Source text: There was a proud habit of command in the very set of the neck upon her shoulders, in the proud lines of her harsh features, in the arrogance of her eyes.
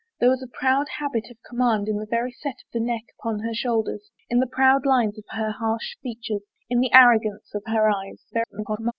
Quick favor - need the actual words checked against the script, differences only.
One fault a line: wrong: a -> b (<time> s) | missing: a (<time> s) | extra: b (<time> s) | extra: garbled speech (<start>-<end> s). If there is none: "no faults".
extra: garbled speech (8.3-8.9 s)